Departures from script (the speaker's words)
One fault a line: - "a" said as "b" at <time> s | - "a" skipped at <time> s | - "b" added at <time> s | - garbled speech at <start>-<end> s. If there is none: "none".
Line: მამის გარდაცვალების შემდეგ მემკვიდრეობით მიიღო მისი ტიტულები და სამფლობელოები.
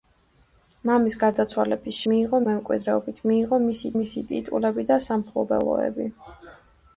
- "შემდეგ" said as "მიიღო" at 2.1 s
- "მისი" added at 4.0 s